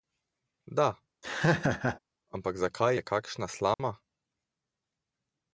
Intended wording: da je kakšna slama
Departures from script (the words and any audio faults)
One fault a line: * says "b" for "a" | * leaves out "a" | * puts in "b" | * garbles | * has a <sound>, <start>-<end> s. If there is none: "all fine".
* has a laugh, 1.2-2.0 s
* puts in "ampak zakaj"
* has a dropout, 3.7-3.8 s